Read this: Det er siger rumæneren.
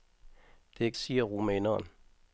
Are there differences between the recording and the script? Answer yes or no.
no